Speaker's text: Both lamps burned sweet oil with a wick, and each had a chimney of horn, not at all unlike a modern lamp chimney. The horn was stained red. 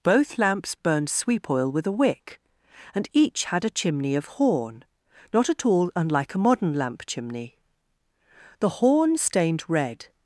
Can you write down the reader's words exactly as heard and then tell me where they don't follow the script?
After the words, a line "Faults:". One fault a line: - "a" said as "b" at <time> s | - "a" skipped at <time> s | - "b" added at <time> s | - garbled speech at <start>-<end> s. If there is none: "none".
Both lamps burned sweep oil with a wick, and each had a chimney of horn, not at all unlike a modern lamp chimney. The horn stained red.
Faults:
- "sweet" said as "sweep" at 1.1 s
- "was" skipped at 9.2 s